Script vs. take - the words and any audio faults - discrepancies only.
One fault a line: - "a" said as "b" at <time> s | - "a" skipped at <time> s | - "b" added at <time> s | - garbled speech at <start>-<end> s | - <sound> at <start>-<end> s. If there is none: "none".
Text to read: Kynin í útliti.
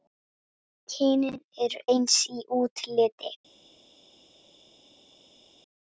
- "eru eins" added at 1.7 s